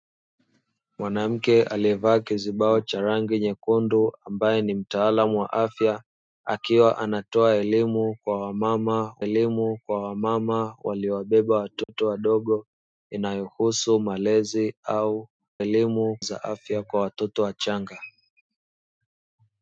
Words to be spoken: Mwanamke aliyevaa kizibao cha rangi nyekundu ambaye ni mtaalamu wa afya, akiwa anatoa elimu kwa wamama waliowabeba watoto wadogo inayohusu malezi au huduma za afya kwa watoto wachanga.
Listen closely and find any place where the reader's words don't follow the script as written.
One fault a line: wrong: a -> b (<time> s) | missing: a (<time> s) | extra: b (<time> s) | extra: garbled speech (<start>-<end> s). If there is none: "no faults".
extra: elimu kwa wamama (9.2 s)
wrong: huduma -> elimu (15.6 s)